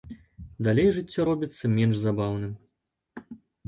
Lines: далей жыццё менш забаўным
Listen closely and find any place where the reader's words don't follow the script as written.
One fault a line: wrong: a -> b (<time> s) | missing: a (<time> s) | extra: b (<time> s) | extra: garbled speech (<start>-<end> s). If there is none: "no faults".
extra: робіцца (1.3 s)